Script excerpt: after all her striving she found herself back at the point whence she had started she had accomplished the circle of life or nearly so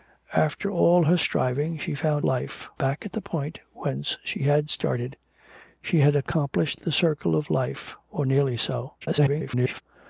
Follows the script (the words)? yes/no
no